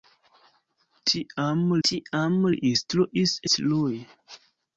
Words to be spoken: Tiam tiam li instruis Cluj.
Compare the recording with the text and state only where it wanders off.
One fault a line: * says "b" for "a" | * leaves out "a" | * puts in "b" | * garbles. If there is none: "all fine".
all fine